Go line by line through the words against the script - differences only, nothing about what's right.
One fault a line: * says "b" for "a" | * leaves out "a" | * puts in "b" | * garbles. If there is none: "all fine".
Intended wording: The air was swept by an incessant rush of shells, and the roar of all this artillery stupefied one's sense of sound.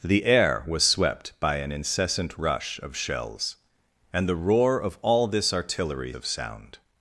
* leaves out "stupefied one's sense"